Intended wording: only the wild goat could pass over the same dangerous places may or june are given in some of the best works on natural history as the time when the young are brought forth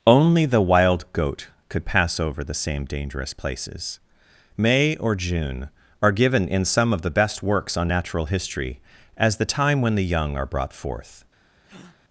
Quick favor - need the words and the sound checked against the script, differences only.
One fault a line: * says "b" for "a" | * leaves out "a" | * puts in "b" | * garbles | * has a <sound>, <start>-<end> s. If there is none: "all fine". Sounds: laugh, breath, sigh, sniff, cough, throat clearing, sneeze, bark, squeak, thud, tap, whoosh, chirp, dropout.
* has a breath, 11.6-12.0 s